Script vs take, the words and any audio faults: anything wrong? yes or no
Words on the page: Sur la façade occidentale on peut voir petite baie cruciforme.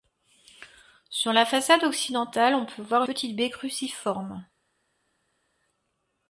no